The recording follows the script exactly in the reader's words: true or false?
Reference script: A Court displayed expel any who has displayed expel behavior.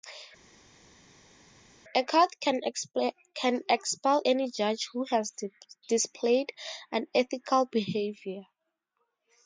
false